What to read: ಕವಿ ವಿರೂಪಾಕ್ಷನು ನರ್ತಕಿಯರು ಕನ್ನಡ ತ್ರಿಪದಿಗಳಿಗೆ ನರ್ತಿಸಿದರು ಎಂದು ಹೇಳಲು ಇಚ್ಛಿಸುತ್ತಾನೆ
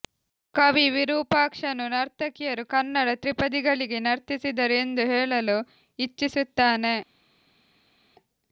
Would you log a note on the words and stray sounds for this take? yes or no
no